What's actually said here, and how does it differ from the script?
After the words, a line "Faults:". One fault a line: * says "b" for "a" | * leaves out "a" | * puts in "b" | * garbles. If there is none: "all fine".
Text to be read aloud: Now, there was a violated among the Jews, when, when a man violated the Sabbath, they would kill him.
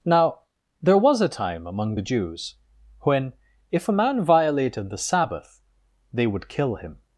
Now, there was a time among the Jews, when, if a man violated the Sabbath, they would kill him.
Faults:
* says "time" for "violated"
* says "if" for "when"